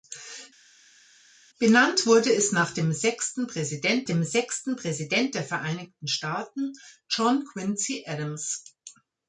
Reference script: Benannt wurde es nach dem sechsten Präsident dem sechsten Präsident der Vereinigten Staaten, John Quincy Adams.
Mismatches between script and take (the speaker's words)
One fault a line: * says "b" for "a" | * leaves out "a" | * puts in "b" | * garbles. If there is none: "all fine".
all fine